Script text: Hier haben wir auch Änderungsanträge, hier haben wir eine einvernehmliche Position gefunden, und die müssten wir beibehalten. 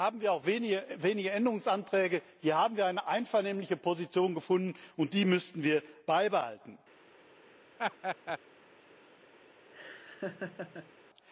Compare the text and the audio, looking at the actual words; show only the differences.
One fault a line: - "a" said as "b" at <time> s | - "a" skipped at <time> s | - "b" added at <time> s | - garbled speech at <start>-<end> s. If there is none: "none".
- "wenige" added at 0.5 s